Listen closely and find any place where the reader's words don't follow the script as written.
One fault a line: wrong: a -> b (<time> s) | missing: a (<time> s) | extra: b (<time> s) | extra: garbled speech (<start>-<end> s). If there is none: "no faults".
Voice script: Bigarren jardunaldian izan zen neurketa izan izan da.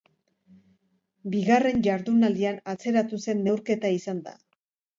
wrong: izan -> atzeratu (2.8 s)
missing: izan (4.2 s)